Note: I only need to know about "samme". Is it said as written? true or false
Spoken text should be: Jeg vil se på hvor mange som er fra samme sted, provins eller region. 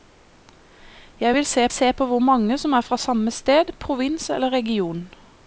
true